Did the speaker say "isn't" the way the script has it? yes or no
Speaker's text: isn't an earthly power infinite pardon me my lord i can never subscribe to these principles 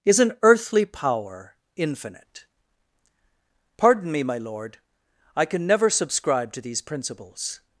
no